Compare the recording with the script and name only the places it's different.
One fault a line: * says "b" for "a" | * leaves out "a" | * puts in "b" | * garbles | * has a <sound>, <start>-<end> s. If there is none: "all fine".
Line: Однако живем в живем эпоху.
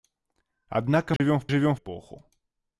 * has a dropout, 1.2-1.2 s